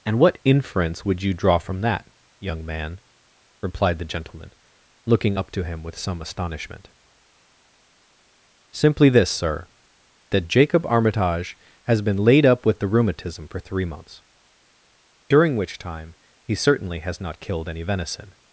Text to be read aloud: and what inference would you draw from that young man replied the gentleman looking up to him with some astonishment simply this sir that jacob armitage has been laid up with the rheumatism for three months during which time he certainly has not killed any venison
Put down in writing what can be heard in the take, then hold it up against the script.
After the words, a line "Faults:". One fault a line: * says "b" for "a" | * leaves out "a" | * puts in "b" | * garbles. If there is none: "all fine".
and what inference would you draw from that young man replied the gentleman looking up to him with some astonishment simply this sir that jacob armitage has been laid up with the rheumatism for three months during which time he certainly has not killed any venison
Faults:
all fine